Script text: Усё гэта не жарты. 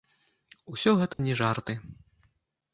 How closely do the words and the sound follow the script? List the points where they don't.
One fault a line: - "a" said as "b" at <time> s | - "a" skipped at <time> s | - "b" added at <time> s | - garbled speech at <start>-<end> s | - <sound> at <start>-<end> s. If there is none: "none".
- dropout at 1.1-1.2 s